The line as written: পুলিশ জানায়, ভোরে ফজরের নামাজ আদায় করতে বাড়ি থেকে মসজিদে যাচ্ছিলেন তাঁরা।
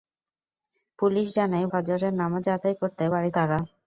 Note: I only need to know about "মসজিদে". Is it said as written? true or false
false